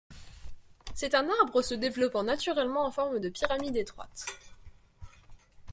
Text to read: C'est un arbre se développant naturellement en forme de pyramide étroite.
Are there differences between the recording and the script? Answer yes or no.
no